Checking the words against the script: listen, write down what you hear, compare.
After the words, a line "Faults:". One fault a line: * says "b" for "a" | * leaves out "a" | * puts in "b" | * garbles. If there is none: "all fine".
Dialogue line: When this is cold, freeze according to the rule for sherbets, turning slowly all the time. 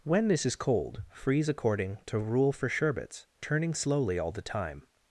When this is cold, freeze according to rule for sherbets, turning slowly all the time.
Faults:
* leaves out "the"